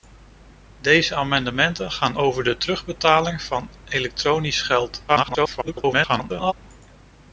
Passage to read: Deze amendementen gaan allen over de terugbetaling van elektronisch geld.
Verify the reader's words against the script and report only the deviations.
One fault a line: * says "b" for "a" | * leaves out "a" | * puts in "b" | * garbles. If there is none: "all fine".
* leaves out "allen"
* garbles